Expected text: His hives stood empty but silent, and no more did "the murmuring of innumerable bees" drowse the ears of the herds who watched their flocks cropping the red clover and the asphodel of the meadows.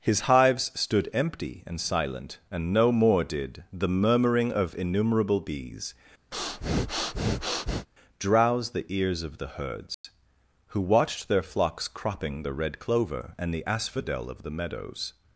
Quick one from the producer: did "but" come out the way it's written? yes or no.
no